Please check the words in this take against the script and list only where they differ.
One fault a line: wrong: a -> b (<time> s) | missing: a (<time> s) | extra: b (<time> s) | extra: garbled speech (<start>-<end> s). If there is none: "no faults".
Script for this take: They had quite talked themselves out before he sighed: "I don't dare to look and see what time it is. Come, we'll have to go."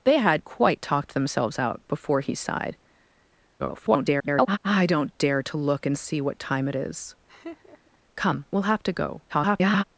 extra: garbled speech (3.6-4.6 s)
extra: garbled speech (9.3-9.8 s)